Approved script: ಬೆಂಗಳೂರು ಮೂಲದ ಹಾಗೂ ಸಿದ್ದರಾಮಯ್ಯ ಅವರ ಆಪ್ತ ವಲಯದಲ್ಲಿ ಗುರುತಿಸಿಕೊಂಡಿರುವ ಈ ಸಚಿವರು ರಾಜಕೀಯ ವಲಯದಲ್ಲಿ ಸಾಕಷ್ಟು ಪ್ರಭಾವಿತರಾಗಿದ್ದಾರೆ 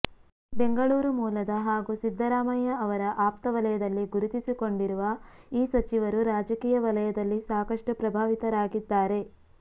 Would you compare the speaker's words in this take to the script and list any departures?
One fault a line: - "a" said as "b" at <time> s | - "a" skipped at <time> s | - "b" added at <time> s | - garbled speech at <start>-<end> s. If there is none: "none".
none